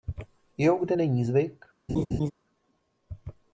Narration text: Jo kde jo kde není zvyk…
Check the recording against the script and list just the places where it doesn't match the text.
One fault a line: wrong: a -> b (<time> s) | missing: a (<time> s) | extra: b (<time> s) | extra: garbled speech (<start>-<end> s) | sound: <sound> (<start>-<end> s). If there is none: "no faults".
missing: jo kde (1.0 s)
sound: laugh (1.9-2.3 s)